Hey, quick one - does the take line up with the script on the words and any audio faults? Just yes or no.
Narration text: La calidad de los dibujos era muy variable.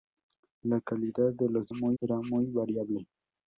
no